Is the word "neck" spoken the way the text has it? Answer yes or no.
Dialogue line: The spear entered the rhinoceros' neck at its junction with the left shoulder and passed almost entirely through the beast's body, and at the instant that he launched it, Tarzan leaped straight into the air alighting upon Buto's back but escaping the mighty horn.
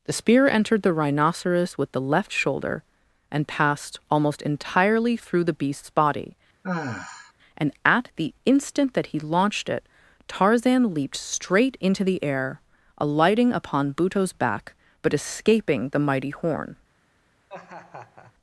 no